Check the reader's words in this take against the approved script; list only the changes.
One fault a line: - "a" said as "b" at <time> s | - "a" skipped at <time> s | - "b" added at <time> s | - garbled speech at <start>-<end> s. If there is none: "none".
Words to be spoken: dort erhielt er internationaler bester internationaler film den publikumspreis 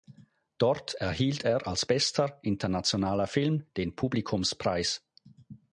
- "internationaler" said as "als" at 1.7 s